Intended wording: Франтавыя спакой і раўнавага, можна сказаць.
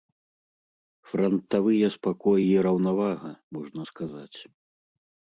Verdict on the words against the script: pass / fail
pass